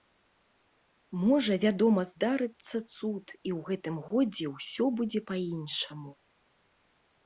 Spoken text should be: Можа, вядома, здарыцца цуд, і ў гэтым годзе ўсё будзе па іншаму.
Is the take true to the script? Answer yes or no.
yes